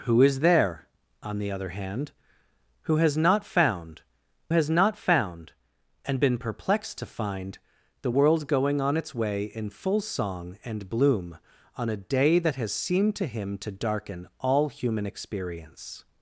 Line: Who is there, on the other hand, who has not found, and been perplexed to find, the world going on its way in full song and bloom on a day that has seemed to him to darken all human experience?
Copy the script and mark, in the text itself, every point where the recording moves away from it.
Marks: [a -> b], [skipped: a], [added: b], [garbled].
Who is there, on the other hand, who has not found, [added: has not found] and been perplexed to find, the world going on its way in full song and bloom on a day that has seemed to him to darken all human experience?